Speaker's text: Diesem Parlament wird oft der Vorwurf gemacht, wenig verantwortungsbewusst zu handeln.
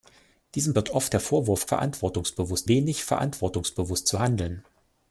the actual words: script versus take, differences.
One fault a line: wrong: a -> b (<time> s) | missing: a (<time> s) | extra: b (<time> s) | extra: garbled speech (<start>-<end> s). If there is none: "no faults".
missing: Parlament (0.7 s)
wrong: gemacht -> verantwortungsbewusst (1.7 s)